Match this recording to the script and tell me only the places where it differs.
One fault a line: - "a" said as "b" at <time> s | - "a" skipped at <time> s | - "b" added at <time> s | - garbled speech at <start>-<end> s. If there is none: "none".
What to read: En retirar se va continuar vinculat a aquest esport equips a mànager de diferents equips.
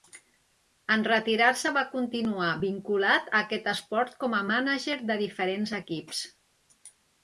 - "equips" said as "com" at 4.2 s